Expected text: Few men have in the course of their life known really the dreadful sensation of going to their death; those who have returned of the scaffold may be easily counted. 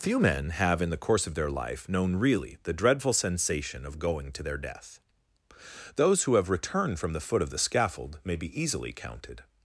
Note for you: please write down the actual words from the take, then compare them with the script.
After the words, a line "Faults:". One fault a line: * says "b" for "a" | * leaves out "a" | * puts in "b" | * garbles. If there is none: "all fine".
Few men have in the course of their life known really the dreadful sensation of going to their death; those who have returned from the foot of the scaffold may be easily counted.
Faults:
* puts in "from the foot"